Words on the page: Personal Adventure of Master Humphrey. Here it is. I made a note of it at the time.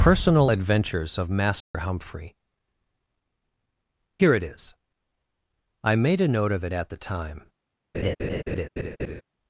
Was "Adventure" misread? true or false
true